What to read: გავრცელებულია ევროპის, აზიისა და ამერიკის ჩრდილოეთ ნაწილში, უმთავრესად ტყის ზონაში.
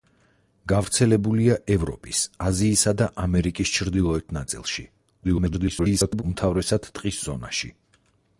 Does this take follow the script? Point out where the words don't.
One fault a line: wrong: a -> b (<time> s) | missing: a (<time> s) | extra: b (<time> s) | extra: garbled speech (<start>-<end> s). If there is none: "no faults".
extra: garbled speech (5.2-6.2 s)